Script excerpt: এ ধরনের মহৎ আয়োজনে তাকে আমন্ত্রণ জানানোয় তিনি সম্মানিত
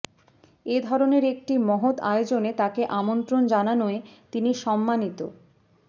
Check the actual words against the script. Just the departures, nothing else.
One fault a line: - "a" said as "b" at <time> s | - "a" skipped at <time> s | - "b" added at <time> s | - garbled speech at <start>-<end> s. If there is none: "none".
- "একটি" added at 1.3 s